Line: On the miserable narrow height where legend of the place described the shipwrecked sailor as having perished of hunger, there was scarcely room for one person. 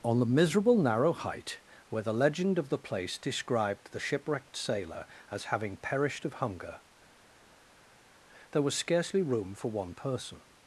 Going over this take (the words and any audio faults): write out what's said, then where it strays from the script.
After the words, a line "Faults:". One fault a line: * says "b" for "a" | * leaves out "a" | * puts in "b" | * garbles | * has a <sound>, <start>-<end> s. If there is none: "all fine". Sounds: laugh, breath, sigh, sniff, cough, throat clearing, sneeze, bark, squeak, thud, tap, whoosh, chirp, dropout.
On the miserable narrow height where the legend of the place described the shipwrecked sailor as having perished of hunger, there was scarcely room for one person.
Faults:
* puts in "the"